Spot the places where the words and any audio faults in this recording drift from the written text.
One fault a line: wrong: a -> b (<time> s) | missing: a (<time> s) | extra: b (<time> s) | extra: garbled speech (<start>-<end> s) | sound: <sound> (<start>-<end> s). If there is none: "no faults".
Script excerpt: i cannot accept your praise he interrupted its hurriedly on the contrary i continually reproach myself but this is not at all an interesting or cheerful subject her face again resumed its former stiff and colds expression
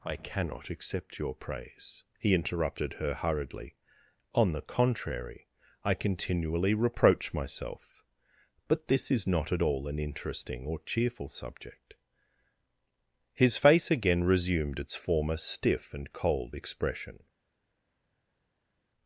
wrong: its -> her (2.9 s)
wrong: her -> his (13.3 s)
wrong: colds -> cold (16.1 s)